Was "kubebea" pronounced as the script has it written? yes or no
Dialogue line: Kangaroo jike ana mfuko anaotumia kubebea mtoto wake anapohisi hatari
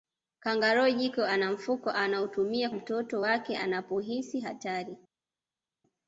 no